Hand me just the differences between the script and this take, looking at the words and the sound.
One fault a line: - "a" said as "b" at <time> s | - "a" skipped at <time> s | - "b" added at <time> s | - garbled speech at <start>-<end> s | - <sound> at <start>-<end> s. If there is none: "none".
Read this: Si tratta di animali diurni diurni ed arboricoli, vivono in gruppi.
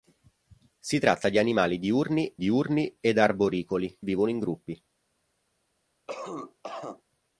- cough at 6.1-7.0 s